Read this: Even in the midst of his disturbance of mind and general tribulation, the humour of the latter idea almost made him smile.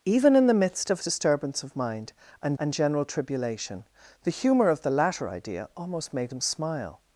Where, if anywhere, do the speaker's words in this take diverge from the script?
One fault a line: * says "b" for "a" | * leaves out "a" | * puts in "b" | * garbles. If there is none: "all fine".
* leaves out "his"
* puts in "and"